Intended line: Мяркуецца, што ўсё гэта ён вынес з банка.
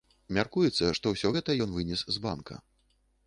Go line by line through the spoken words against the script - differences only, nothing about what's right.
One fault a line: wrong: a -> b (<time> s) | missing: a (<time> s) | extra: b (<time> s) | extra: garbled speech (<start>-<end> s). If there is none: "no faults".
no faults